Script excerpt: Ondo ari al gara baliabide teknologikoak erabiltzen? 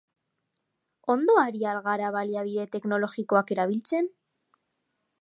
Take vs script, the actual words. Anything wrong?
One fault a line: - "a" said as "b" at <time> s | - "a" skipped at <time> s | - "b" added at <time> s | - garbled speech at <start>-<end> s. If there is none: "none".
none